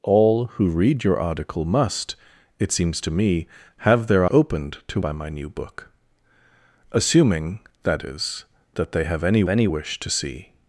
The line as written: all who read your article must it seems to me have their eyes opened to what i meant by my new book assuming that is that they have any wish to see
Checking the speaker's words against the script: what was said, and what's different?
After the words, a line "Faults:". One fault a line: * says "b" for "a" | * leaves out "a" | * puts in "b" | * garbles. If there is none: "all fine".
all who read your article must it seems to me have their opened to by my new book assuming that is that they have any any wish to see
Faults:
* leaves out "eyes"
* leaves out "what i meant"
* puts in "any"